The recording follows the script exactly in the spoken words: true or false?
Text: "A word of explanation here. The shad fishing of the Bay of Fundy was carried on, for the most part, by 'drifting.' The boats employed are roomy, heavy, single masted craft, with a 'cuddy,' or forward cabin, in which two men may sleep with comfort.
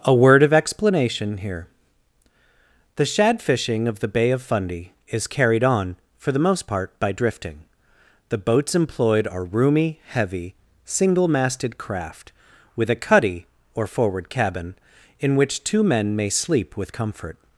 false